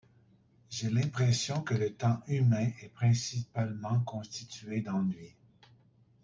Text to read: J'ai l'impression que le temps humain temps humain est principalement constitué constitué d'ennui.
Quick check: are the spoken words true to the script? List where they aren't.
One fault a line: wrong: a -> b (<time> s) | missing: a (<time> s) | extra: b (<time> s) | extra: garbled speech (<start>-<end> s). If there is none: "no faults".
missing: temps humain (2.7 s)
missing: constitué (4.8 s)